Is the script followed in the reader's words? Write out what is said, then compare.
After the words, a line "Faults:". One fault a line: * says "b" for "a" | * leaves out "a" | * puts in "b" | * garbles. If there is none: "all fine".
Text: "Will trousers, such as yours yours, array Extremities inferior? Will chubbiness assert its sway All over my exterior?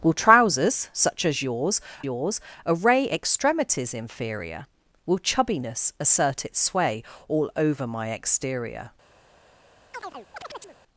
"Will trousers, such as yours yours, array Extremities inferior? Will chubbiness assert its sway All over my exterior?
Faults:
all fine